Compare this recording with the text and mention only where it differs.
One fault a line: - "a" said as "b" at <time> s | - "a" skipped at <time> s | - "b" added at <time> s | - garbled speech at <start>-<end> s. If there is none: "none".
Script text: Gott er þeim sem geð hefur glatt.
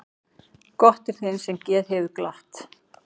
none